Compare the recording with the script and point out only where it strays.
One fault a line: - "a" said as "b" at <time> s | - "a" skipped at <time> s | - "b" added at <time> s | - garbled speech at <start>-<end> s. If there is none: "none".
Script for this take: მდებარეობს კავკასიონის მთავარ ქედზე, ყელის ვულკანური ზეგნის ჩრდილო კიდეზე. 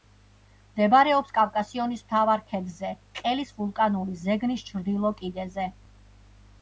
none